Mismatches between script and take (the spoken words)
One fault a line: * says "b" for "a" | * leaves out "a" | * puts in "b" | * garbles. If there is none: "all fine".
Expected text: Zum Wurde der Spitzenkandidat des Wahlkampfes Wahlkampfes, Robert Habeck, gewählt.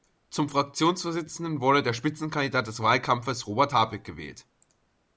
* puts in "Fraktionsvorsitzenden"
* leaves out "Wahlkampfes"